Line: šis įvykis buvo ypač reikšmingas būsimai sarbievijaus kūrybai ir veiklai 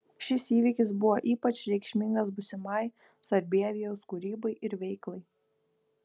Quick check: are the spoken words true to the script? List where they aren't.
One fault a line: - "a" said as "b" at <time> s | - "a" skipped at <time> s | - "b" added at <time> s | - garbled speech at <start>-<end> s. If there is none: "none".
none